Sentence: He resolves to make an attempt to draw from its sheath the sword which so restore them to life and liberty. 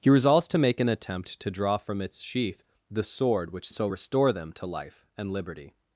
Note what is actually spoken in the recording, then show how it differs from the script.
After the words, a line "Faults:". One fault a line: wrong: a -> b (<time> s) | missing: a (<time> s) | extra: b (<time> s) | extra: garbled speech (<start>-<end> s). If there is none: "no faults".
He resolves to make an attempt to draw from its sheath the sword which so restore them to life and liberty.
Faults:
no faults